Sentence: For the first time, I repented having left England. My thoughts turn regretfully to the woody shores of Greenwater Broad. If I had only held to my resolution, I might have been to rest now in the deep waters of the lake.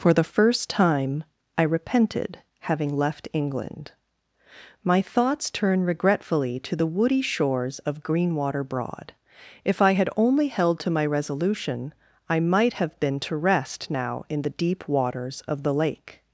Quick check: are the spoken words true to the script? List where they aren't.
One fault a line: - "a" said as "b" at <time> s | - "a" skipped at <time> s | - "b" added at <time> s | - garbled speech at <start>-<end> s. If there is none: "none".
none